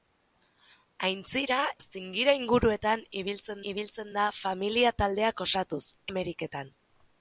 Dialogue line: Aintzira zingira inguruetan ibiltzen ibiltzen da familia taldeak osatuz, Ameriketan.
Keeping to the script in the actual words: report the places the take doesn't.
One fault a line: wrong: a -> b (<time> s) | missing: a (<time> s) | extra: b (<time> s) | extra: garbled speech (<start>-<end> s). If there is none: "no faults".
no faults